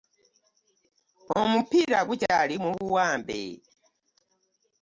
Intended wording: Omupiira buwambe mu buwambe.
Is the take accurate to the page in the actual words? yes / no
no